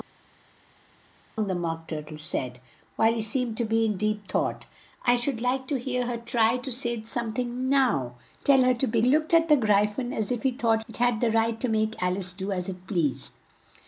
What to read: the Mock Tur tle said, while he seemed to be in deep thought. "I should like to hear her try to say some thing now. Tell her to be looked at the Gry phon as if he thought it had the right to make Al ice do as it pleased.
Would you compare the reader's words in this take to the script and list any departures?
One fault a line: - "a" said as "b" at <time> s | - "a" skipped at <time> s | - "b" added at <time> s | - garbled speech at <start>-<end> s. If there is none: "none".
none